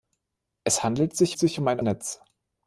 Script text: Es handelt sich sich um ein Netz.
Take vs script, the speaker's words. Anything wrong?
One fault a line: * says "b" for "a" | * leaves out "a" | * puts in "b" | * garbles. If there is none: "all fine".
all fine